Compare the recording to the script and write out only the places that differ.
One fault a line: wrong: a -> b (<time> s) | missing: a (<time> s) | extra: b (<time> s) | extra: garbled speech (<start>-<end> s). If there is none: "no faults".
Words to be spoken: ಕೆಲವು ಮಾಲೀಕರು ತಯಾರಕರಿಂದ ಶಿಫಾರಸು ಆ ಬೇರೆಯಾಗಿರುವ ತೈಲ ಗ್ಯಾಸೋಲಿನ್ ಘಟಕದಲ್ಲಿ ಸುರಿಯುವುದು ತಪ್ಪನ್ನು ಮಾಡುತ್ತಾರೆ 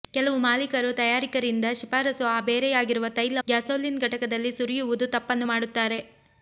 no faults